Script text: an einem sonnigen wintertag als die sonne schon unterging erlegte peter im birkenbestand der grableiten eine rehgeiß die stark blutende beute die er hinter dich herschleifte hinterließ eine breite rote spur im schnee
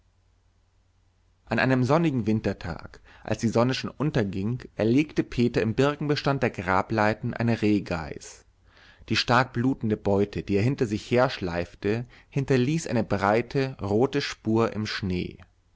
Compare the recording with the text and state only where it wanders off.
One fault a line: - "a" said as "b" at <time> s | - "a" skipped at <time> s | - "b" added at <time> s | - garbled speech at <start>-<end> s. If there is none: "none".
- "dich" said as "sich" at 10.9 s